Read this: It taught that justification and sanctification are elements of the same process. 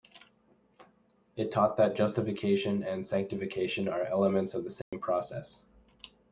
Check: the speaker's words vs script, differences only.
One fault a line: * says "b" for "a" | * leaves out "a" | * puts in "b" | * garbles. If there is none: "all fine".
all fine